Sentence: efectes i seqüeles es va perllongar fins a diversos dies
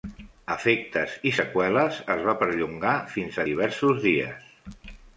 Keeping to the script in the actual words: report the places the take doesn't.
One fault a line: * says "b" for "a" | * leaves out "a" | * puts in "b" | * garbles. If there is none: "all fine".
all fine